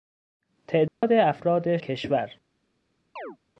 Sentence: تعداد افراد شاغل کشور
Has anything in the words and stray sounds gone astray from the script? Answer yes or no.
yes